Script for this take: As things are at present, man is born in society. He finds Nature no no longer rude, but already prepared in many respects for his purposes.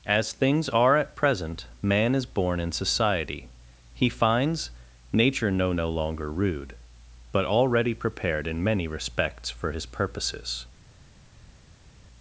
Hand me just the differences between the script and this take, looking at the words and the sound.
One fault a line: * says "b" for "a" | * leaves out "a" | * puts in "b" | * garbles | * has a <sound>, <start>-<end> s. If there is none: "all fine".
all fine